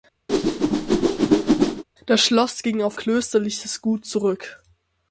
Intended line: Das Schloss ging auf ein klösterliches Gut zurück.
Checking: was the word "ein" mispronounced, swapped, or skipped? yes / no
yes